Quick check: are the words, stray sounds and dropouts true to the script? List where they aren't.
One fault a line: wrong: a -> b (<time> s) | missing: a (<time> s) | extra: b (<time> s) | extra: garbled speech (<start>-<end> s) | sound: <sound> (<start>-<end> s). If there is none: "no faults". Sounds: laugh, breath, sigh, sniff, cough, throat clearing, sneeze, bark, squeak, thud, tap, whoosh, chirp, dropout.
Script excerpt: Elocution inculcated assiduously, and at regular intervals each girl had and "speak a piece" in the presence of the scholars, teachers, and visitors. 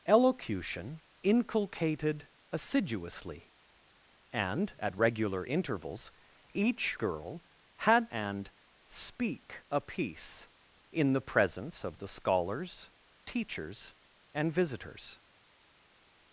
no faults